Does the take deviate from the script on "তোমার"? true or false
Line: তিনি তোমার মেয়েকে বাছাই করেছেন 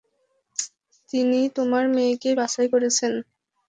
false